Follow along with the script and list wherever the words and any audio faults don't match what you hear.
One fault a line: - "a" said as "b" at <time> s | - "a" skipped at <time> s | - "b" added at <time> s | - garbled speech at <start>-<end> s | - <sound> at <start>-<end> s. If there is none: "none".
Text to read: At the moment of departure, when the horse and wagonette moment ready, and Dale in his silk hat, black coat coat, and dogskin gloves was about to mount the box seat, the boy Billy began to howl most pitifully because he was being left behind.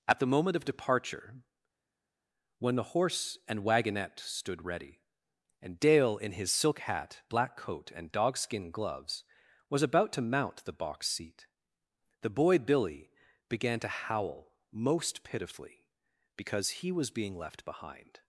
- "moment" said as "stood" at 4.2 s
- "coat" skipped at 7.9 s